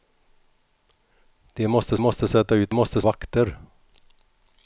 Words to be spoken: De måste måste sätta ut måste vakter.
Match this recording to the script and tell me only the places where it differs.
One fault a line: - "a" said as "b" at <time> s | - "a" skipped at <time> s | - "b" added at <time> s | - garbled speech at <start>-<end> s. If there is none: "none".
none